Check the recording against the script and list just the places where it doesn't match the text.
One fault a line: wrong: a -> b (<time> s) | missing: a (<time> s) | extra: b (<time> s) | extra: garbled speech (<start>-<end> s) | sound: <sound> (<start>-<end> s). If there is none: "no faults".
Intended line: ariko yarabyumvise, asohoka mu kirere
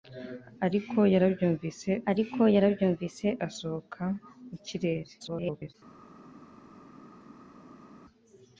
extra: ariko yarabyumvise (2.1 s)
extra: garbled speech (5.2-5.7 s)